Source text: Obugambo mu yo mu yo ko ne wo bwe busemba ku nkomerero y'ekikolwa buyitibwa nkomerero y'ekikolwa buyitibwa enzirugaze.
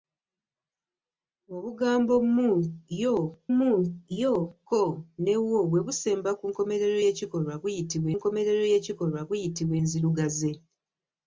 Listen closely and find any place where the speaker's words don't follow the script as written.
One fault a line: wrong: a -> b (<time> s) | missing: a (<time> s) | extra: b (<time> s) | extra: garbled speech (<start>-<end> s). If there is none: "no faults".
no faults